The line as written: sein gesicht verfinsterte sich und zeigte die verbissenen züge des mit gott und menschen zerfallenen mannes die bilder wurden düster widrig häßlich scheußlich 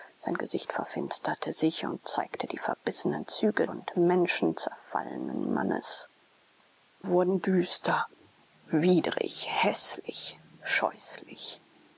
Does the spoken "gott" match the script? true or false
false